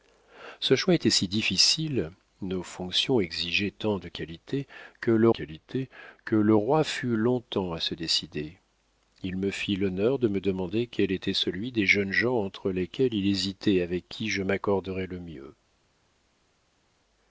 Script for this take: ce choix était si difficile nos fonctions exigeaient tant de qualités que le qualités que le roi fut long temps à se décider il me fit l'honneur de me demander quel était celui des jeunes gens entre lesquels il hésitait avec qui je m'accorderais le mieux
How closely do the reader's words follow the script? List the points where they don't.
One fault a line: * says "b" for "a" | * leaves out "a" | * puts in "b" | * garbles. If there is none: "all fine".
all fine